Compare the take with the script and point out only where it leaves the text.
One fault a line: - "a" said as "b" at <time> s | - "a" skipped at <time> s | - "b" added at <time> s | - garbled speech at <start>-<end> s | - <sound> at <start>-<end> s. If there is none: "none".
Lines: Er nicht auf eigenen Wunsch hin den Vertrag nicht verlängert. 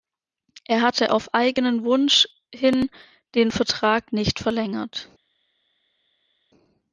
- "nicht" said as "hatte" at 0.8 s